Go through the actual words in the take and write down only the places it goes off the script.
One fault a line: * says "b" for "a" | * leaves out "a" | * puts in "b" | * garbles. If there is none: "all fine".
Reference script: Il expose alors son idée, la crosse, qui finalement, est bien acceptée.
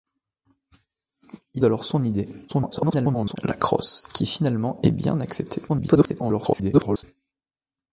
* leaves out "expose"
* garbles
* garbles